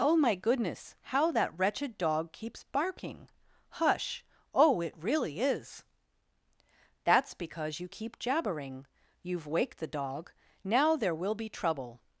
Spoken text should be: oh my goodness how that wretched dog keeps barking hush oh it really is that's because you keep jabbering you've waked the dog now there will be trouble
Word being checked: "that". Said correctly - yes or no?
yes